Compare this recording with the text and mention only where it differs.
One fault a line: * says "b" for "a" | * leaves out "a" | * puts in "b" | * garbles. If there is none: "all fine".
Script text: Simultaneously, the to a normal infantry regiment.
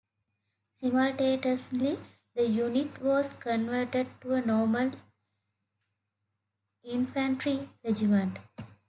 * puts in "unit was converted"